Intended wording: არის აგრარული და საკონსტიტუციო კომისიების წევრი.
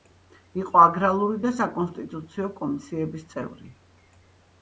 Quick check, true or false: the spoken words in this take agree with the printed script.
false